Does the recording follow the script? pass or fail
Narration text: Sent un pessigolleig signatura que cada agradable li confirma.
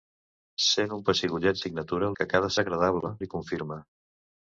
pass